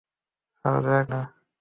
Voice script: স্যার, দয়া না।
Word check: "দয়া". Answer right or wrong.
right